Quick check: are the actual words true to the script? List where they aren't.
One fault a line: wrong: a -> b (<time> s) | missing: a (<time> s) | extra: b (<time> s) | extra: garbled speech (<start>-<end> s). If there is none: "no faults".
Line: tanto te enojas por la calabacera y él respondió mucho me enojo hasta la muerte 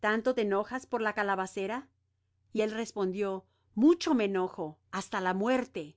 no faults